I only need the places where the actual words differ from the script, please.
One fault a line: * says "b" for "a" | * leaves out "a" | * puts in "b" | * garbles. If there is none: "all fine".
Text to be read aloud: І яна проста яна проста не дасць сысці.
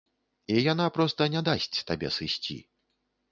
* leaves out "яна проста"
* puts in "табе"